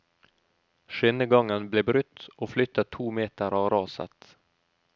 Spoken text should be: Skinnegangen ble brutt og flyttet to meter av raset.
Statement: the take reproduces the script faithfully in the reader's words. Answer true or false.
true